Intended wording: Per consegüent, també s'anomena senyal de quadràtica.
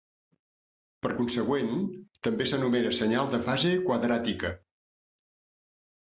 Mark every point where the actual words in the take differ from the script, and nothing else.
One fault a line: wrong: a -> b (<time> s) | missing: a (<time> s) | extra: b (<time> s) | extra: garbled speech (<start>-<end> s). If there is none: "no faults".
extra: fase (3.5 s)